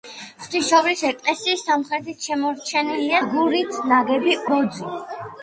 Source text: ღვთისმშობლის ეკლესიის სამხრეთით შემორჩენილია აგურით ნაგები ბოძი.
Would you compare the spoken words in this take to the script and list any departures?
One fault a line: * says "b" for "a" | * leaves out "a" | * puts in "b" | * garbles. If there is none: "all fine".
all fine